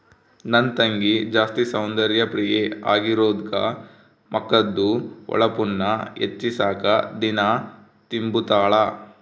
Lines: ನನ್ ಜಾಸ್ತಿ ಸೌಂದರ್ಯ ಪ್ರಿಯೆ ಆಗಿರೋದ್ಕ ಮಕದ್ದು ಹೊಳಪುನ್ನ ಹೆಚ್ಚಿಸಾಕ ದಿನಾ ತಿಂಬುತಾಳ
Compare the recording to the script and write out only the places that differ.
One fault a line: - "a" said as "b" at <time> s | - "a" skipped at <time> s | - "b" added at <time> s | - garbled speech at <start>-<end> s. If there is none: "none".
- "ತಂಗಿ" added at 0.8 s